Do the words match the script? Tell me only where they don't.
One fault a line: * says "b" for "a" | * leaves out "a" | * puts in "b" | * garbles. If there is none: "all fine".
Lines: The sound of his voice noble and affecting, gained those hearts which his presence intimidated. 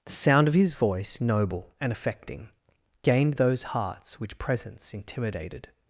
* leaves out "his"